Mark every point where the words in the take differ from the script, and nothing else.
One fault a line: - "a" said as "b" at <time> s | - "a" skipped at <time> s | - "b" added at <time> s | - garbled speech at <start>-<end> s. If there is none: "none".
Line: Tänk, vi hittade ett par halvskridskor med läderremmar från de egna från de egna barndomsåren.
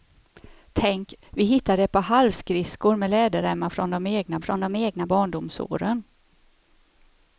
none